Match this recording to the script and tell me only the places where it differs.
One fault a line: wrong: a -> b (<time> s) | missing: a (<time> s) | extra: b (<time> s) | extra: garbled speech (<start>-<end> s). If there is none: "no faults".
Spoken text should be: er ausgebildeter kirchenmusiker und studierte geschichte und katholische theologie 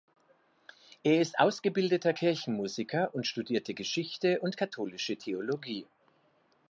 extra: ist (1.2 s)